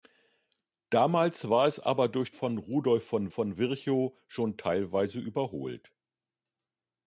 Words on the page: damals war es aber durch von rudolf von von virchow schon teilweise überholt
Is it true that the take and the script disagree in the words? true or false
false